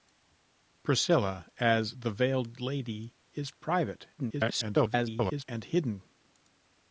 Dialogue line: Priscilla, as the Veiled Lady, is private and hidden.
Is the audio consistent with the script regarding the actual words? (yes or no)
no